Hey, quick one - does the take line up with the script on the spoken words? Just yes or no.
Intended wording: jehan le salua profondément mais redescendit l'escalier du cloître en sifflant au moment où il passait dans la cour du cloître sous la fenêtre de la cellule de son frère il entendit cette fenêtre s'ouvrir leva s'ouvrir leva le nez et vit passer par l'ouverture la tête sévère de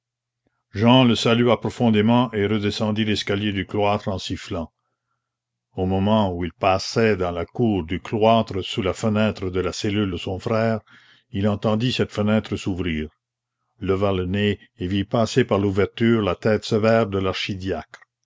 no